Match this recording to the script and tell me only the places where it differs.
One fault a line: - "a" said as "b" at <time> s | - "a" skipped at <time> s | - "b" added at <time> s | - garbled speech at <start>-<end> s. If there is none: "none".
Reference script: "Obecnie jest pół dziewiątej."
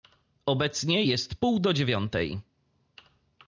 - "do" added at 1.6 s